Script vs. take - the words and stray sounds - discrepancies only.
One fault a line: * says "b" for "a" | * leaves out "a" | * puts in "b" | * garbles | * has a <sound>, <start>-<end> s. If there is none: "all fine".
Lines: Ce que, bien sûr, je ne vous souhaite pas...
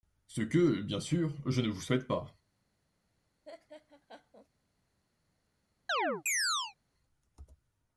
* has a laugh, 3.4-4.5 s
* has a chirp, 5.9-6.7 s